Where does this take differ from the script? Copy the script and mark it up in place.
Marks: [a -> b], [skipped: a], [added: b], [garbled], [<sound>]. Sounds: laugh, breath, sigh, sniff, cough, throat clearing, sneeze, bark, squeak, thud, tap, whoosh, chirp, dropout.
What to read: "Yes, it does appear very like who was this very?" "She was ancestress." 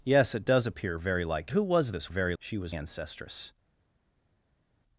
"Yes, it does appear very like who was this very?" "She was ancestress."